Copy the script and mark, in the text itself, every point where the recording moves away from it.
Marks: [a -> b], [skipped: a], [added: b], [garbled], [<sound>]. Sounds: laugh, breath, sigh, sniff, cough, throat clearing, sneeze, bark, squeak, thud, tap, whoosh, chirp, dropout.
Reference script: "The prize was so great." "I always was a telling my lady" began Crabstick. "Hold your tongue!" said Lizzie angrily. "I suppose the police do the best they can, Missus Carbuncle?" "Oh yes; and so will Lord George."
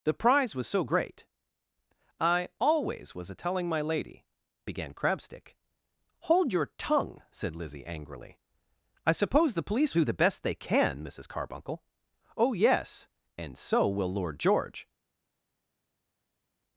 "The prize was so great." "I always was a telling my lady" began Crabstick. "Hold your tongue!" said Lizzie angrily. "I suppose the police do the best they can, Missus Carbuncle?" "Oh yes; and so will Lord George."